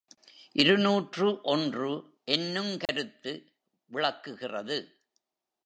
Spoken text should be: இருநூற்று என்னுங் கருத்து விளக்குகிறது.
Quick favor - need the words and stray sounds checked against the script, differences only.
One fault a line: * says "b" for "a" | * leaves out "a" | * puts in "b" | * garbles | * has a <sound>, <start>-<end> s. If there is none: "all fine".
* puts in "ஒன்று"
* has a dropout, 2.9-2.9 s